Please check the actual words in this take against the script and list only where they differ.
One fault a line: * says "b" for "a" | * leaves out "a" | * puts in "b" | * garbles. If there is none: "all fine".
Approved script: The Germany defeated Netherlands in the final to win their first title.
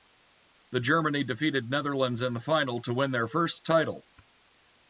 all fine